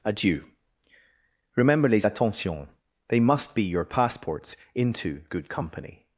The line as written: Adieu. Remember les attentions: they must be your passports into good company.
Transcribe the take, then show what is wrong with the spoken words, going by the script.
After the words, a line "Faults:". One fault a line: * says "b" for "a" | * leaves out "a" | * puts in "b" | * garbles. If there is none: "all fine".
Adieu. Remember les attentions: they must be your passports into good company.
Faults:
all fine